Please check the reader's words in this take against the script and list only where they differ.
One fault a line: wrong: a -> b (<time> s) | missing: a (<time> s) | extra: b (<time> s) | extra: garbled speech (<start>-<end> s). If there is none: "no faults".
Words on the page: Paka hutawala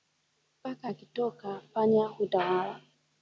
extra: akitoka panya (0.9 s)